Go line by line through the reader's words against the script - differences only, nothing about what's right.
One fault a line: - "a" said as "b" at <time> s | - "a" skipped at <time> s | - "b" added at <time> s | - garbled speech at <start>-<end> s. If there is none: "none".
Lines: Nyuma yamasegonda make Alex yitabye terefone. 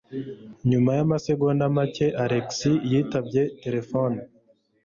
none